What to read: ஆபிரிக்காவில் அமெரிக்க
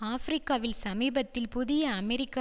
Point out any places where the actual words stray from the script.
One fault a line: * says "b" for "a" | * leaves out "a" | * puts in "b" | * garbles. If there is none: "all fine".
* puts in "சமீபத்தில் புதிய"